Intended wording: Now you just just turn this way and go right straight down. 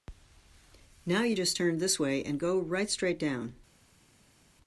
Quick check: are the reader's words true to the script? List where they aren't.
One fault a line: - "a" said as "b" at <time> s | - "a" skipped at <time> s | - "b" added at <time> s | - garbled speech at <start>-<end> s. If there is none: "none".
- "just" skipped at 1.6 s